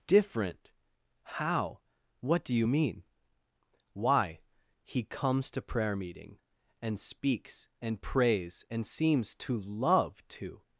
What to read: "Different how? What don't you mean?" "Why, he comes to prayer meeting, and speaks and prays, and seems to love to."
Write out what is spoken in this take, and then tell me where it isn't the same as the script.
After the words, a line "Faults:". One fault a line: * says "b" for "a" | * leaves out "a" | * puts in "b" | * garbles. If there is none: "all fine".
"Different how? What do you mean?" "Why, he comes to prayer meeting, and speaks and prays, and seems to love to."
Faults:
* says "do" for "don't"